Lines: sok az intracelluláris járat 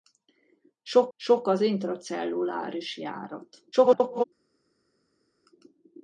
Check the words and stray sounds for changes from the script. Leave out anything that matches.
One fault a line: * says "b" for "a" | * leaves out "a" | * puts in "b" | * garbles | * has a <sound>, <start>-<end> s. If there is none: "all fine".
* puts in "sok"
* garbles